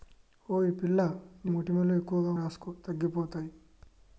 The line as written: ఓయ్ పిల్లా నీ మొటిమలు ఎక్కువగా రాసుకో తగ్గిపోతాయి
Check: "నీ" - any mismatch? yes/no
no